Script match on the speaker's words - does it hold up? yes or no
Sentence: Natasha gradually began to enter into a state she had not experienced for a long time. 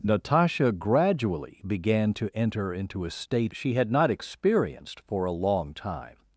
yes